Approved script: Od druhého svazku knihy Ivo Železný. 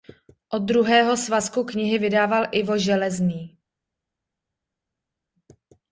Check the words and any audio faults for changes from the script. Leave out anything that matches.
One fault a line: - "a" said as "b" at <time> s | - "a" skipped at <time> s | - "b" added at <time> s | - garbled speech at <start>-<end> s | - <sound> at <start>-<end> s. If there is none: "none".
- "vydával" added at 2.0 s